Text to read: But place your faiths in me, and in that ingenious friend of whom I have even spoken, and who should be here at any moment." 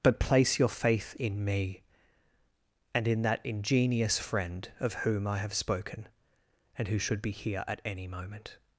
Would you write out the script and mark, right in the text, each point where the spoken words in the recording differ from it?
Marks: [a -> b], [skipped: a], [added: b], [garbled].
But place your [faiths -> faith] in me, and in that ingenious friend of whom I have [skipped: even] spoken, and who should be here at any moment."